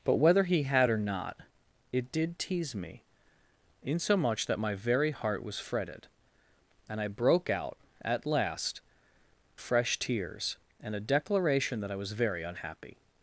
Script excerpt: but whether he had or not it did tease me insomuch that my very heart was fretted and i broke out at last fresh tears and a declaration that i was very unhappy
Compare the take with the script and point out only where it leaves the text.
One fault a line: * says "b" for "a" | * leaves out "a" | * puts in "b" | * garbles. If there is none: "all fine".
all fine